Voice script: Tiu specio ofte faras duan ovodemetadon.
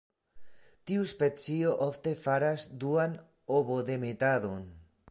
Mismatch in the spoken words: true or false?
false